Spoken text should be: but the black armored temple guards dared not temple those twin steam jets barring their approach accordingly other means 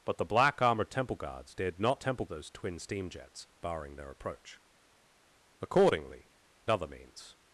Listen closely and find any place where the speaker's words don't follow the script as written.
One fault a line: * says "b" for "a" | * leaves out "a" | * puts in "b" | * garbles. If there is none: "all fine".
all fine